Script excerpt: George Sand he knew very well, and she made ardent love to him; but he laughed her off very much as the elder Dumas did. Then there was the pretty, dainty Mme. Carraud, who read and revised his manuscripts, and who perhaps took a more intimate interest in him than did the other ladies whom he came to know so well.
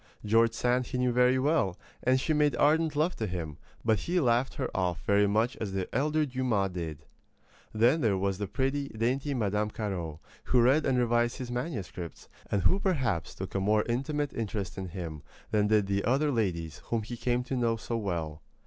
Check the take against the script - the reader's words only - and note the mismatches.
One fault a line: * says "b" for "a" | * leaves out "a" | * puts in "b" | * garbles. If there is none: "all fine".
all fine